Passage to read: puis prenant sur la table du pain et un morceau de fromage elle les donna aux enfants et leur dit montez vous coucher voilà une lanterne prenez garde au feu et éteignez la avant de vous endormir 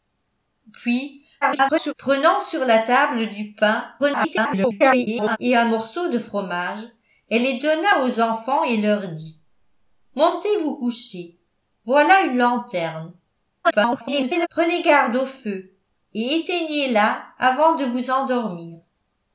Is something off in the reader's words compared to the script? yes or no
yes